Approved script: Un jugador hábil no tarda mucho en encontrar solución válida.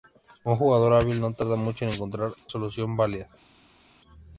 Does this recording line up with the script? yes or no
yes